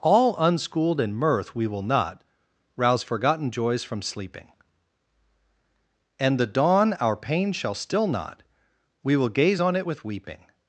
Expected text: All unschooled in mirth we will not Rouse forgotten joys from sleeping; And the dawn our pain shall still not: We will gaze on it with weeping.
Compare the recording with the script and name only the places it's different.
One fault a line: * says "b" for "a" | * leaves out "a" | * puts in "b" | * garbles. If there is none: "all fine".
all fine